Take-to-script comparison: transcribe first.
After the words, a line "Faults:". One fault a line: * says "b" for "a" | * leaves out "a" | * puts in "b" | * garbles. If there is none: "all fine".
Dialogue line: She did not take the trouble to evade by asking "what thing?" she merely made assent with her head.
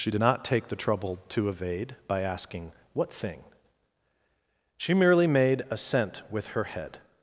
She did not take the trouble to evade by asking "what thing?" she merely made assent with her head.
Faults:
all fine